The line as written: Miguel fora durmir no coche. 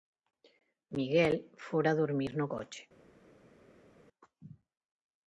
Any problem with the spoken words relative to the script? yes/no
no